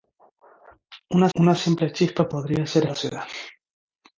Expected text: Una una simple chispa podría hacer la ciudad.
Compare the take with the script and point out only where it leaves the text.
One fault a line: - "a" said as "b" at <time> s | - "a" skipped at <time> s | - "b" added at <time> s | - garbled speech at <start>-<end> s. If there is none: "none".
none